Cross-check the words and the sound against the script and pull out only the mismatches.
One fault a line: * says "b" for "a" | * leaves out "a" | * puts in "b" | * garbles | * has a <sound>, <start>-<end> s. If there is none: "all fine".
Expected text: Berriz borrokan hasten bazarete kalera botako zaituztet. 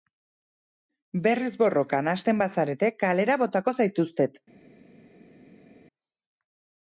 all fine